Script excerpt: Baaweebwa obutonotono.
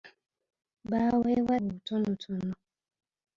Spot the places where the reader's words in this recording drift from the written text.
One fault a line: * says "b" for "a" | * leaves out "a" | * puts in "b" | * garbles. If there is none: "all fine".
all fine